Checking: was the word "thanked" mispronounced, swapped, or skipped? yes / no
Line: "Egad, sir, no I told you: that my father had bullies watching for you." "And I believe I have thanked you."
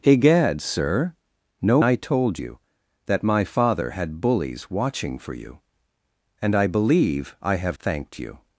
no